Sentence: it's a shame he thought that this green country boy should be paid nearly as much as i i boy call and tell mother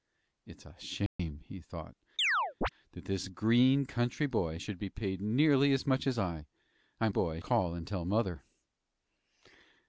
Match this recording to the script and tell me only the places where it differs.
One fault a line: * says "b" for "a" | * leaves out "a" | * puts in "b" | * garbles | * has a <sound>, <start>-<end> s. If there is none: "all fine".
* has a dropout, 1.1-1.2 s
* has a chirp, 2.2-2.7 s